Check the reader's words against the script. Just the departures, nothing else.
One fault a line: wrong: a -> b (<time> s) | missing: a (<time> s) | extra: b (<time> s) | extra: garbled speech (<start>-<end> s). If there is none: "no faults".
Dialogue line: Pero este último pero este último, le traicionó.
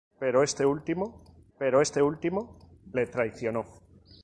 no faults